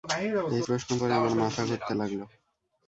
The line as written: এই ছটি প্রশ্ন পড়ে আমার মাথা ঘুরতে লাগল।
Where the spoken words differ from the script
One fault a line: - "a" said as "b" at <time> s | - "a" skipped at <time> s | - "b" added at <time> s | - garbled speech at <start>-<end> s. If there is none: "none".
- "ছটি" skipped at 0.6 s